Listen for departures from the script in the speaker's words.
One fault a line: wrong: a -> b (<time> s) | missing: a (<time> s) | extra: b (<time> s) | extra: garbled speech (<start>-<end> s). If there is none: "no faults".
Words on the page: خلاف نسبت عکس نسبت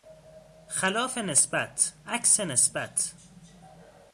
no faults